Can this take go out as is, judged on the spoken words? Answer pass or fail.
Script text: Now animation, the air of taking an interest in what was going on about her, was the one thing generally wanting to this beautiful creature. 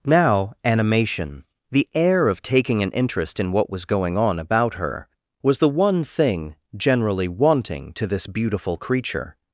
pass